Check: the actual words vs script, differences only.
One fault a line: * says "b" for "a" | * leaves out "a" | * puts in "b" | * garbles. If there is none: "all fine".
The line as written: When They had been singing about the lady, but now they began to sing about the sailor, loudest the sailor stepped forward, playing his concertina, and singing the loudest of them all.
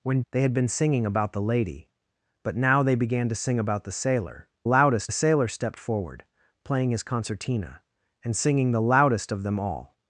all fine